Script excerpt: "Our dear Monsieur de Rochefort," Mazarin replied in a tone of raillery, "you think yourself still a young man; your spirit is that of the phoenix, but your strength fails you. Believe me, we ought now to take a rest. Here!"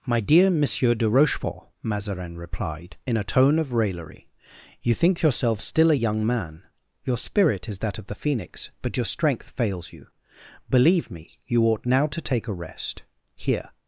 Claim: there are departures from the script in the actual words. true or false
true